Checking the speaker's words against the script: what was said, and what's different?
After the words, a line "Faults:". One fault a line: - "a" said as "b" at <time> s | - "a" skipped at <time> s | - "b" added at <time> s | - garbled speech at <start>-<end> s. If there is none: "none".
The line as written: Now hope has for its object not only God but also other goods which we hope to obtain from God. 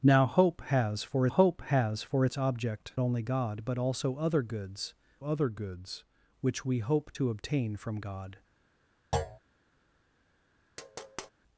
Now hope has for hope has for its object only God but also other goods other goods which we hope to obtain from God.
Faults:
- "hope has for" added at 1.3 s
- "not" skipped at 2.9 s
- "other goods" added at 5.2 s